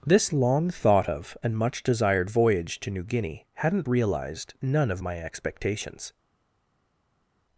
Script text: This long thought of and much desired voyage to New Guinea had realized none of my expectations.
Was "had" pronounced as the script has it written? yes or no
no